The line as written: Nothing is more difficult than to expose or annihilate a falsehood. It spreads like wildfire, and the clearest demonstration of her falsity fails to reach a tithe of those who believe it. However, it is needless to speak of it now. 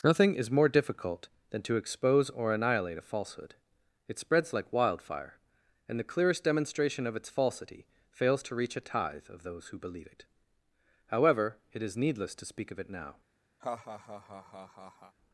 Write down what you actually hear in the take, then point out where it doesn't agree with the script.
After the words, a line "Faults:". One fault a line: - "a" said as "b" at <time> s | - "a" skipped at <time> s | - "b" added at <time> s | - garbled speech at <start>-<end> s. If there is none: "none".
Nothing is more difficult than to expose or annihilate a falsehood. It spreads like wildfire, and the clearest demonstration of its falsity fails to reach a tithe of those who believe it. However, it is needless to speak of it now.
Faults:
- "her" said as "its" at 7.2 s